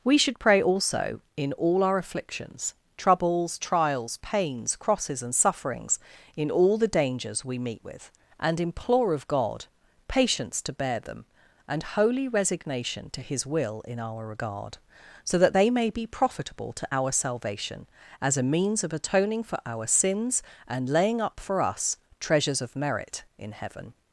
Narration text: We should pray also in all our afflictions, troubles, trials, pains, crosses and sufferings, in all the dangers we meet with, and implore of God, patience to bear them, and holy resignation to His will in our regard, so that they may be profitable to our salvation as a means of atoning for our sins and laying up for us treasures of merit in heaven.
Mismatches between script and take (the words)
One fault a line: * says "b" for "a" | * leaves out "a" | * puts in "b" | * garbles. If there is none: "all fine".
all fine